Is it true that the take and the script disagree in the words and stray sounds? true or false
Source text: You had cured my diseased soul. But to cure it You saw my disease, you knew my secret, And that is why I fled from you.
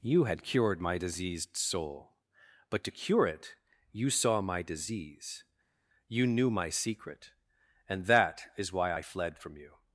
false